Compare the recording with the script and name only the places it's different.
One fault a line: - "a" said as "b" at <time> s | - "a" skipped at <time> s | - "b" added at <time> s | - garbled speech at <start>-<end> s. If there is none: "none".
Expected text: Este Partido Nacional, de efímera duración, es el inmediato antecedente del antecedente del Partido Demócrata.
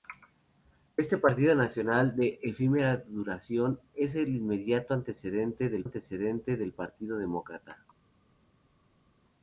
none